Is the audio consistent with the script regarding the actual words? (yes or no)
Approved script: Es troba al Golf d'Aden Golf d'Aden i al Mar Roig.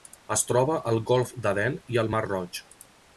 no